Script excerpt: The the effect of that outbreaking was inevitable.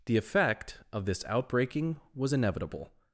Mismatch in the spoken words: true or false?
true